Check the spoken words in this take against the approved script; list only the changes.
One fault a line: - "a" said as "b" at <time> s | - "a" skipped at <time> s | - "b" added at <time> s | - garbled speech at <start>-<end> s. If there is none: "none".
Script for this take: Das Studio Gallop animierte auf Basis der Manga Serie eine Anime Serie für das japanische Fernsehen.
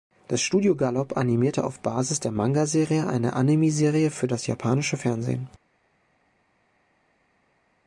none